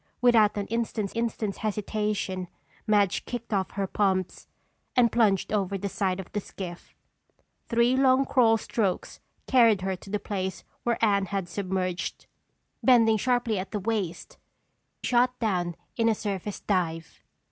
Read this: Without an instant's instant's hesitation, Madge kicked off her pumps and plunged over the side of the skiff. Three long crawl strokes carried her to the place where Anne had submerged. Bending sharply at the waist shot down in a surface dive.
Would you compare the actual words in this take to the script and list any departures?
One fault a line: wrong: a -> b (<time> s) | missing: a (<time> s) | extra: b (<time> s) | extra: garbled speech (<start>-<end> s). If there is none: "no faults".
no faults